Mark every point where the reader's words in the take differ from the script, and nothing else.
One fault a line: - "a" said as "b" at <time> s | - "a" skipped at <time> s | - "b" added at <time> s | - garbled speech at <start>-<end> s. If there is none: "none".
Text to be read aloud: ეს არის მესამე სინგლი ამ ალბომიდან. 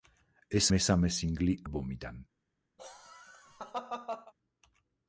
- "არის" skipped at 0.7 s
- "ამ" skipped at 1.6 s